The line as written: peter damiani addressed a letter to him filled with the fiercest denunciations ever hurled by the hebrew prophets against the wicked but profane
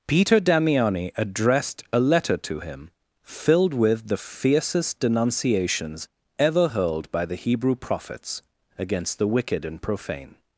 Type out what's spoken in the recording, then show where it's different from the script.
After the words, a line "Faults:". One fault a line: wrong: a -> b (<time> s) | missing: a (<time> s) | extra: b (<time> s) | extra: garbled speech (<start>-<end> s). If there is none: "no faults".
peter damiani addressed a letter to him filled with the fiercest denunciations ever hurled by the hebrew prophets against the wicked and profane
Faults:
wrong: but -> and (9.6 s)